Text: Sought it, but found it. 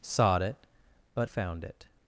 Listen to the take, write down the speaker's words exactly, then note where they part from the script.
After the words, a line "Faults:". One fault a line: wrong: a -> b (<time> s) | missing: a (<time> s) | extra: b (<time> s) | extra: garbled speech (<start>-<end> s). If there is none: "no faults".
Sought it, but found it.
Faults:
no faults